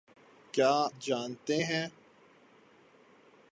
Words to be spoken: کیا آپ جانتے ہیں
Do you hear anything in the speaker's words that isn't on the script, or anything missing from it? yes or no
yes